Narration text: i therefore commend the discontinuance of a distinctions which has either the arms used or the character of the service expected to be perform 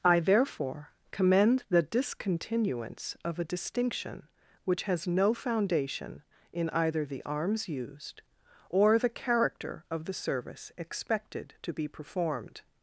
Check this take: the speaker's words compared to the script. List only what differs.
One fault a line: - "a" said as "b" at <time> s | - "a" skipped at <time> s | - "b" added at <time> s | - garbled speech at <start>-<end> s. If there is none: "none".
- "distinctions" said as "distinction" at 3.5 s
- "no foundation in" added at 5.1 s
- "perform" said as "performed" at 11.9 s